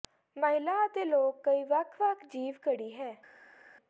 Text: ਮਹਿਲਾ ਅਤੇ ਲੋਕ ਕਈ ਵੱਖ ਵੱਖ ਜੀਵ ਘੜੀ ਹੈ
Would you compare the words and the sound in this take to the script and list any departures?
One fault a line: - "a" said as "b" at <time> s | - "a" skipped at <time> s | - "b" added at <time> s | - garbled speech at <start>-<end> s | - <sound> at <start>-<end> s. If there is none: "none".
none